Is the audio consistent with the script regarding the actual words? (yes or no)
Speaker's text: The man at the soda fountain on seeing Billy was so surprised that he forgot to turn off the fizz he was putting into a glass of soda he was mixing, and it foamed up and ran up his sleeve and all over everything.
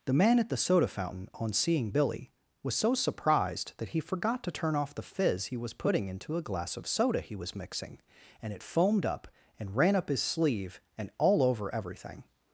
yes